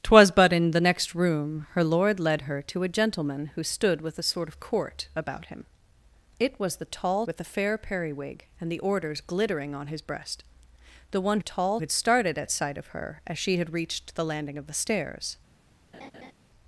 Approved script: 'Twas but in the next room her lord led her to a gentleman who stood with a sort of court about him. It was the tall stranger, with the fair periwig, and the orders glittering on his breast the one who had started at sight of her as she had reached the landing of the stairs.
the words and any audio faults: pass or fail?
fail